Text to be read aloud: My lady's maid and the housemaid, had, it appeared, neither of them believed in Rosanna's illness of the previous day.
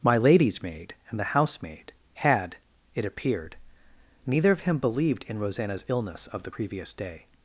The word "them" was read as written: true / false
false